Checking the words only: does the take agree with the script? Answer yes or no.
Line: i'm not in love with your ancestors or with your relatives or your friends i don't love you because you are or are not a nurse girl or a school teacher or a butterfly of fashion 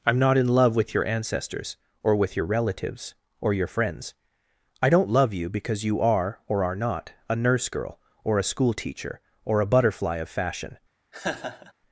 yes